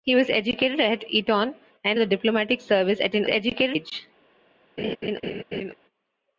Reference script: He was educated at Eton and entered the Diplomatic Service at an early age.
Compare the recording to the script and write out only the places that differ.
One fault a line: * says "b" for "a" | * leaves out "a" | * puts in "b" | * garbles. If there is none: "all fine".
* leaves out "entered"
* says "educated" for "early"